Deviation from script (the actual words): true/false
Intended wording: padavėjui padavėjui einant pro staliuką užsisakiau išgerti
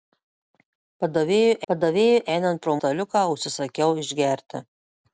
false